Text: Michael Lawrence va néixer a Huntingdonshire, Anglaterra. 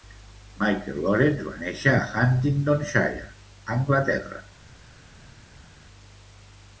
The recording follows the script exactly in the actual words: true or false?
true